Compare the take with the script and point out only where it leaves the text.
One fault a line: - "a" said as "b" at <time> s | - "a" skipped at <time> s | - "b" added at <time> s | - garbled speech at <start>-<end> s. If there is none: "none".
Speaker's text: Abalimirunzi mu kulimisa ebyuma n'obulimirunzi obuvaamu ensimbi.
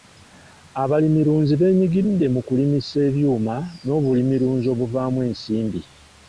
- "beenyigidde" added at 1.6 s